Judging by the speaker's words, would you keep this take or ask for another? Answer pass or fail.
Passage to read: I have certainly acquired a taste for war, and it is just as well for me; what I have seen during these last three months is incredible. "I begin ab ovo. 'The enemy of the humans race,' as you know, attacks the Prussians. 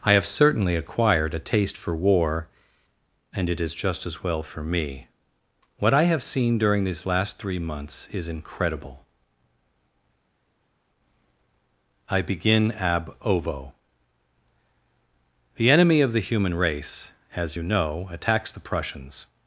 fail